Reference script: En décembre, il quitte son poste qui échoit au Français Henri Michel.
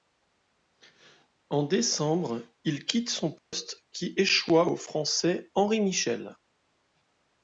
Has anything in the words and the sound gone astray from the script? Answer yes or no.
yes